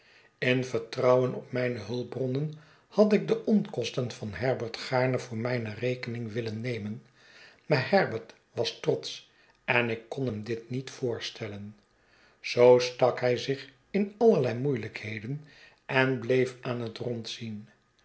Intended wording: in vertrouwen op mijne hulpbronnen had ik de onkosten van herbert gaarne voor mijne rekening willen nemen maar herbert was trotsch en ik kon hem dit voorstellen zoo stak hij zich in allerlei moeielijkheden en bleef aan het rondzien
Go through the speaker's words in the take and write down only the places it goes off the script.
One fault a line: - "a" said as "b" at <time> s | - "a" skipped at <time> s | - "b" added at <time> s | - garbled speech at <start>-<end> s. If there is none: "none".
- "niet" added at 10.7 s